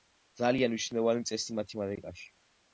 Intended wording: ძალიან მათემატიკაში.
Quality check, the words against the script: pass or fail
fail